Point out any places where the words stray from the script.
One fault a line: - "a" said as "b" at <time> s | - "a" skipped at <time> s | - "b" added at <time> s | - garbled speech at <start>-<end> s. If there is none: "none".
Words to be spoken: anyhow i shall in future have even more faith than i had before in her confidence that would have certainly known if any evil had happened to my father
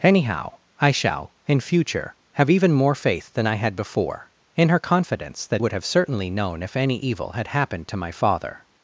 none